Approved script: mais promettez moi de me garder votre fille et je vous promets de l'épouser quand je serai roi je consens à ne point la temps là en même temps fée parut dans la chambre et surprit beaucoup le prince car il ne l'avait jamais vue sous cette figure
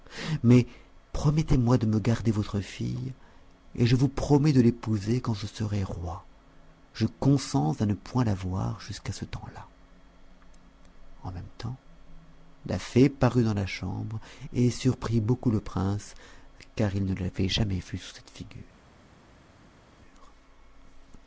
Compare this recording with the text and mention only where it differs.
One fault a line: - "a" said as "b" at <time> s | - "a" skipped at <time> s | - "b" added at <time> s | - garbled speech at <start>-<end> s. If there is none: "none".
- "voir jusqu'à ce" added at 8.3 s
- "la" added at 12.7 s